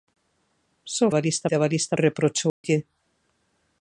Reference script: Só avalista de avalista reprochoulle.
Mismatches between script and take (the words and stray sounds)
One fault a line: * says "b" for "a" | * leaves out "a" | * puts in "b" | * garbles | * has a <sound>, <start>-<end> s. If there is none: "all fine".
* has a dropout, 2.5-2.6 s